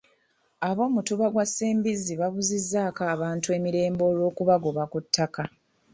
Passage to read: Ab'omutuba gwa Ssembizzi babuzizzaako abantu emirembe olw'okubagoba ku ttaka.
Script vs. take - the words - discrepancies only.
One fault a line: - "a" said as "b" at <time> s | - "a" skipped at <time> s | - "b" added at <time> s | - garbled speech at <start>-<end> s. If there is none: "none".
none